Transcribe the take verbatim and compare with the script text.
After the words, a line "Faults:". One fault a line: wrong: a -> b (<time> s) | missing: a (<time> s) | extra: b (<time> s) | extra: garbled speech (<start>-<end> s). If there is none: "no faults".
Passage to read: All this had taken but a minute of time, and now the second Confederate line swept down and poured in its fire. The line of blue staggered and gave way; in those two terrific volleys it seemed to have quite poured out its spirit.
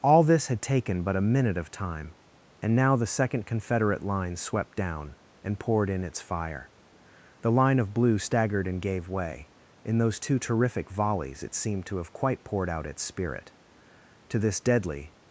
All this had taken but a minute of time, and now the second Confederate line swept down and poured in its fire. The line of blue staggered and gave way; in those two terrific volleys it seemed to have quite poured out its spirit. To this deadly
Faults:
extra: To this deadly (14.3 s)